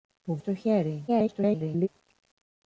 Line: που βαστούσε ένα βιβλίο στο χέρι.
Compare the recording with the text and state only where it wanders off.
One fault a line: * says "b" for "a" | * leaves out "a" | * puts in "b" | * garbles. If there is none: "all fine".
* leaves out "βαστούσε ένα βιβλίο"
* garbles